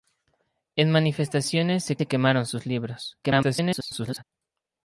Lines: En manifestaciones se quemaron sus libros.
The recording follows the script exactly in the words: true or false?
false